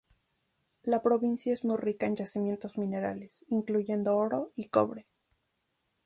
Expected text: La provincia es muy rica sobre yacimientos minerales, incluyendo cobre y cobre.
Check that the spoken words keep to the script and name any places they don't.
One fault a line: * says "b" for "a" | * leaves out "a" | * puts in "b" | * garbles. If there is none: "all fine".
* says "en" for "sobre"
* says "oro" for "cobre"